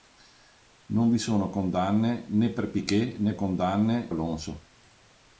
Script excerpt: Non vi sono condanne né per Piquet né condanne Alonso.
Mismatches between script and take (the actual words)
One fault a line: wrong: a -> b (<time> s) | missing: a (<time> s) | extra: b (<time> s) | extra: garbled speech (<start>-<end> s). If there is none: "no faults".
no faults